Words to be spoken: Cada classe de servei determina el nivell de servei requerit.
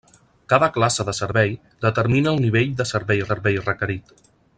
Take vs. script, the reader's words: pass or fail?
fail